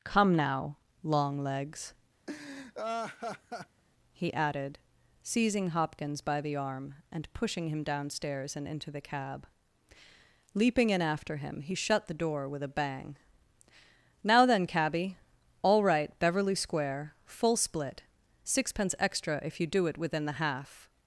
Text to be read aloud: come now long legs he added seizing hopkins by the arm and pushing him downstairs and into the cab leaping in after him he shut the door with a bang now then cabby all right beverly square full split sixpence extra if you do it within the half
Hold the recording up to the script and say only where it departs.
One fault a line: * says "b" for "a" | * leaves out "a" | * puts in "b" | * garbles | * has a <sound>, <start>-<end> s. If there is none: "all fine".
* has a laugh, 2.3-3.8 s